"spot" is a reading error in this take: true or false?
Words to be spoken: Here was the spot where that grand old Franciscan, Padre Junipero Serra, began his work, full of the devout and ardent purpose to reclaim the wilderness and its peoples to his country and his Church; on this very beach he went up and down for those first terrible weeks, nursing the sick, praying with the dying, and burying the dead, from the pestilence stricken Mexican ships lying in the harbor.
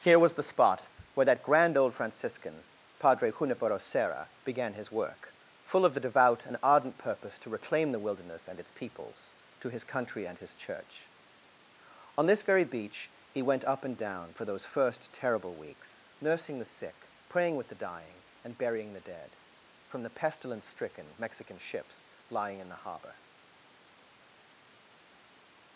false